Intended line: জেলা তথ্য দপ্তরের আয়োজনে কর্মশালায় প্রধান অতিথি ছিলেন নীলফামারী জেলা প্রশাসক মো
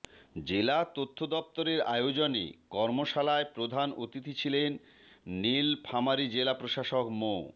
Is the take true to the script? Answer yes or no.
yes